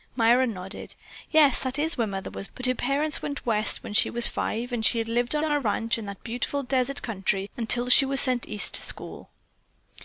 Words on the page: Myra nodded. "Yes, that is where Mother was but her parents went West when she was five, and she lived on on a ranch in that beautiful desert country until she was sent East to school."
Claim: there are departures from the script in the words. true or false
false